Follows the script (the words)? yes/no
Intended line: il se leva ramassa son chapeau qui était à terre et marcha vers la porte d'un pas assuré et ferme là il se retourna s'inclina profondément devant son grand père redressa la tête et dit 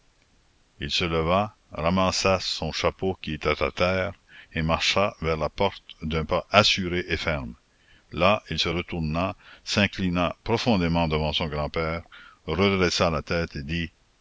yes